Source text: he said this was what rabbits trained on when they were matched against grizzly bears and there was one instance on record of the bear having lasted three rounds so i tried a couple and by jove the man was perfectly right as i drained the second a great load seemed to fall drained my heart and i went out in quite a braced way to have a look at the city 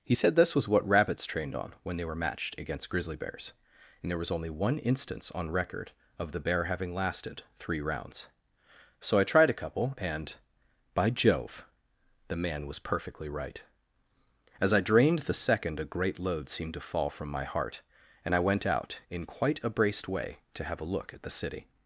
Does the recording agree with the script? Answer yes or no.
no